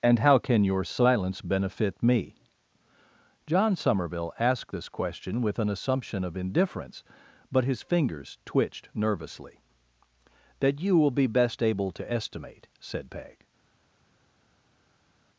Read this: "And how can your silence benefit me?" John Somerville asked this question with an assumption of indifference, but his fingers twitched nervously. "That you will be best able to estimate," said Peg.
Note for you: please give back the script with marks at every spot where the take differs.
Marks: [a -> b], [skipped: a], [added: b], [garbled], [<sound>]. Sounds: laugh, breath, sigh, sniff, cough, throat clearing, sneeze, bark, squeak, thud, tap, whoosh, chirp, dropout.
"And how can your silence benefit me?" John Somerville asked this question with an assumption of indifference, but his fingers twitched nervously. "That you will be best able to estimate," said Peg.